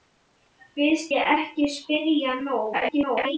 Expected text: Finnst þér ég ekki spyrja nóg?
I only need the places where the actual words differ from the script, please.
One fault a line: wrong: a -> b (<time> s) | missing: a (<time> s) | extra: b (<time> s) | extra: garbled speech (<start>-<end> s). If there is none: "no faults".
missing: þér (1.1 s)
extra: garbled speech (2.7-3.4 s)